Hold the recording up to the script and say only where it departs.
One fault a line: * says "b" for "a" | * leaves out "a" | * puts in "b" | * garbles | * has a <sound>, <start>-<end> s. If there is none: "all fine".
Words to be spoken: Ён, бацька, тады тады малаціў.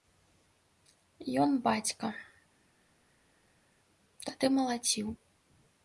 * leaves out "тады"